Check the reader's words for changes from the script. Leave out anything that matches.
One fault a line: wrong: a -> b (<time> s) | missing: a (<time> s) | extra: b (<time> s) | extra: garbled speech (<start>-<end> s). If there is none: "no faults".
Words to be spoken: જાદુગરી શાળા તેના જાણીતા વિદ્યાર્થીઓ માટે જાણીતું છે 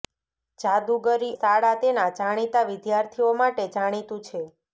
no faults